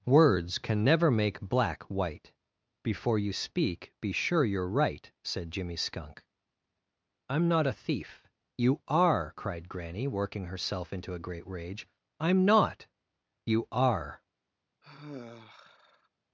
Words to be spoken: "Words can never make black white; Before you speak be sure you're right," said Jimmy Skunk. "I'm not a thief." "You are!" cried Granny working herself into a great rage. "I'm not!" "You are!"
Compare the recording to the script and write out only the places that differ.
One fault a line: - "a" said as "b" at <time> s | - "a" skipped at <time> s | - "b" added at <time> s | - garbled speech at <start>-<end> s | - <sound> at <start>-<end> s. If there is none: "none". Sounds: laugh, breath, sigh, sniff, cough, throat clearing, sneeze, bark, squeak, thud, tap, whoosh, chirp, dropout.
- sigh at 14.8-16.1 s